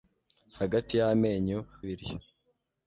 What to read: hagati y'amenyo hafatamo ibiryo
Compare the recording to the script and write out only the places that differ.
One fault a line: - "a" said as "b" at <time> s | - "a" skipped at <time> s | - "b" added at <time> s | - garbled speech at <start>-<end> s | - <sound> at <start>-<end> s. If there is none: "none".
- "hafatamo" skipped at 1.6 s